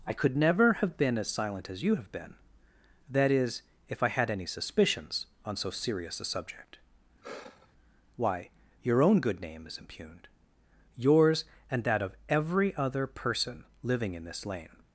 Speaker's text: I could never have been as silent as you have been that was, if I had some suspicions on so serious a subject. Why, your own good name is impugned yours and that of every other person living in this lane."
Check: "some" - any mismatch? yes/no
yes